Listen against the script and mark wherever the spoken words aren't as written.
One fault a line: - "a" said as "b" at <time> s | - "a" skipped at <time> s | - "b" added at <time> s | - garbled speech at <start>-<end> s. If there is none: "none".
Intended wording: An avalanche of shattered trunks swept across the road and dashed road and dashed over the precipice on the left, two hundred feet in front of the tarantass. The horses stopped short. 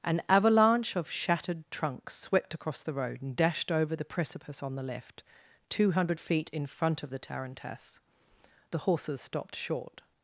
- "road and dashed" skipped at 3.7 s